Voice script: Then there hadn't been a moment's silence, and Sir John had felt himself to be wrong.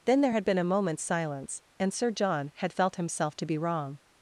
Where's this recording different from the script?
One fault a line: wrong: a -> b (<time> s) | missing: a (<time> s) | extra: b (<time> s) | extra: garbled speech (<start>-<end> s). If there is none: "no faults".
wrong: hadn't -> had (0.3 s)